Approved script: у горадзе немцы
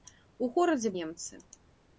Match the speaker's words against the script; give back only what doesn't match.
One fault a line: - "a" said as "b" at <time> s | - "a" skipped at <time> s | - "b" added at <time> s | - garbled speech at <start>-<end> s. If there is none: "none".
none